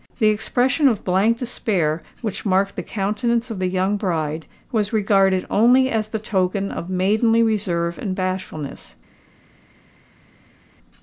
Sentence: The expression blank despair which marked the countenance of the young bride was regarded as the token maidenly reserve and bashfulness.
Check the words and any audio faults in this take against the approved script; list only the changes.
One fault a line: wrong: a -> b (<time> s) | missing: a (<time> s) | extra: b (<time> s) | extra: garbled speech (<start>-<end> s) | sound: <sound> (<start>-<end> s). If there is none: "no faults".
extra: of (0.9 s)
extra: only (5.5 s)
extra: of (6.7 s)